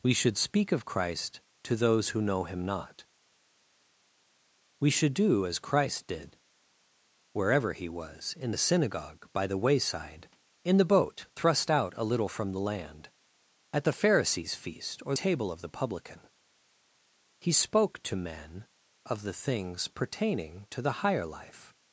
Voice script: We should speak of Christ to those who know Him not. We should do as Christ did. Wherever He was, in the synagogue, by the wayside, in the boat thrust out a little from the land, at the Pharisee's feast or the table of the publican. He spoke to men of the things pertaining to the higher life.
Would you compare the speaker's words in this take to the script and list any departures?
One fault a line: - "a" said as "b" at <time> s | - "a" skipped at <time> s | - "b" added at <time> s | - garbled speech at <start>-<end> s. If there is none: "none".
- "the" skipped at 15.2 s